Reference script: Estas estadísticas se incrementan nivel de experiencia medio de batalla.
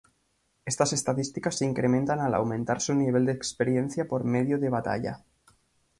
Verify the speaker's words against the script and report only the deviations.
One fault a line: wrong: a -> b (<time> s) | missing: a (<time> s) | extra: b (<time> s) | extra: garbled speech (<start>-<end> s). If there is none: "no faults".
extra: al aumentar su (2.2 s)
extra: por (4.1 s)